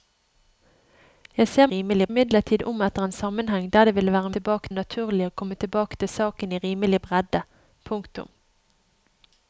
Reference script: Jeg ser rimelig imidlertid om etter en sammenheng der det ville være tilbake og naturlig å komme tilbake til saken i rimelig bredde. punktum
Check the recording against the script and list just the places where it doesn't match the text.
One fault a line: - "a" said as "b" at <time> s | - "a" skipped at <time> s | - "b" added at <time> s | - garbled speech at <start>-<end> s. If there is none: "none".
none